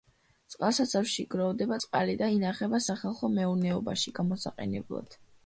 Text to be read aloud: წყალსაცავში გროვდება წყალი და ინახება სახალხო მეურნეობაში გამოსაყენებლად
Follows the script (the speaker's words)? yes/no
yes